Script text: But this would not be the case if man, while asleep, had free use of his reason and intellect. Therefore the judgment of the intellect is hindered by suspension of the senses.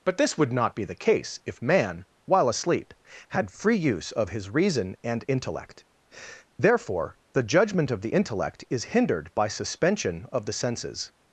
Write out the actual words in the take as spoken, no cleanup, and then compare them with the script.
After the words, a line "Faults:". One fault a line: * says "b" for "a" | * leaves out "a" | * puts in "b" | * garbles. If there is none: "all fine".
But this would not be the case if man, while asleep, had free use of his reason and intellect. Therefore the judgment of the intellect is hindered by suspension of the senses.
Faults:
all fine